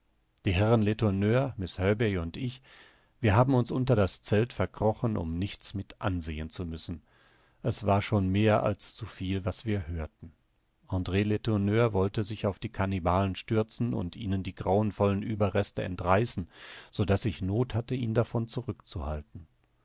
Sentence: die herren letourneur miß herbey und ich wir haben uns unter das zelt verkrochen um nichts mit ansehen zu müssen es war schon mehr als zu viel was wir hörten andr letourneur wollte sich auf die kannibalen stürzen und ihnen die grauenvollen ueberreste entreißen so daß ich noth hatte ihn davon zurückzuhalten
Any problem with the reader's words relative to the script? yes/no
no